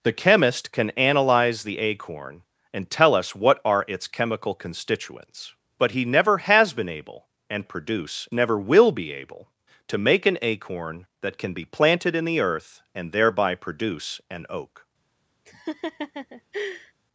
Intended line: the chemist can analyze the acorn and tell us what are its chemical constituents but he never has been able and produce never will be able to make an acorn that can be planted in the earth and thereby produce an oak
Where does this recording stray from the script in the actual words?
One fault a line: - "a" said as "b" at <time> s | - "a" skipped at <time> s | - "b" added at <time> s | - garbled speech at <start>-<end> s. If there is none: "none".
none